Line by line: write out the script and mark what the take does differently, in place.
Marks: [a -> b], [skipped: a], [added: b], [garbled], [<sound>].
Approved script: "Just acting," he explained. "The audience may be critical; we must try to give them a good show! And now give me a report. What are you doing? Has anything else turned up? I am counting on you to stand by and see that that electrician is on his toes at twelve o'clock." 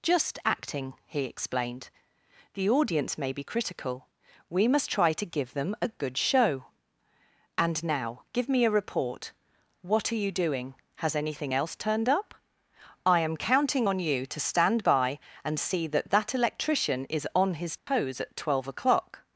"Just acting," he explained. "The audience may be critical; we must try to give them a good show! And now give me a report. What are you doing? Has anything else turned up? I am counting on you to stand by and see that that electrician is on his toes [dropout] at twelve o'clock."